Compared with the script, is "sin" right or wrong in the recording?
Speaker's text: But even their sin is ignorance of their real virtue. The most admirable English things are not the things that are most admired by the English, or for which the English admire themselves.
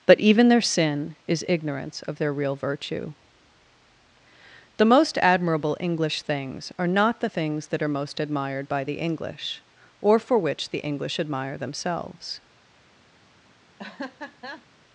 right